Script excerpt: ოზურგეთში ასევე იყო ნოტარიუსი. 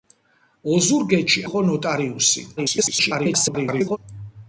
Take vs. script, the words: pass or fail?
fail